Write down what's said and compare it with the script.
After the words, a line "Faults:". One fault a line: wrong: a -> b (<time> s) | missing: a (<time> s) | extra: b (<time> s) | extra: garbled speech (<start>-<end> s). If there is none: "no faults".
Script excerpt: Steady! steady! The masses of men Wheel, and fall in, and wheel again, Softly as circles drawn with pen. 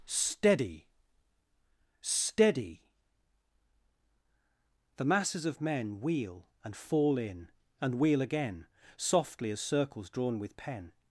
Steady! steady! The masses of men Wheel, and fall in, and wheel again, Softly as circles drawn with pen.
Faults:
no faults